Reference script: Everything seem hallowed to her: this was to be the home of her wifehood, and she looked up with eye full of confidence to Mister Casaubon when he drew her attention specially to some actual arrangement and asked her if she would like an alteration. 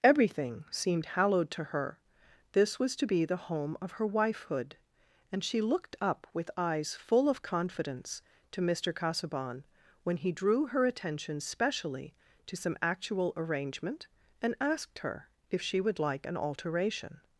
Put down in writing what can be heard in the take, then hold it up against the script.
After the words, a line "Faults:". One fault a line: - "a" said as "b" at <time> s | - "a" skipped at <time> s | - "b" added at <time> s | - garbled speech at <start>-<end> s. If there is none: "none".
Everything seemed hallowed to her: this was to be the home of her wifehood, and she looked up with eyes full of confidence to Mister Casaubon when he drew her attention specially to some actual arrangement and asked her if she would like an alteration.
Faults:
- "seem" said as "seemed" at 0.7 s
- "eye" said as "eyes" at 6.6 s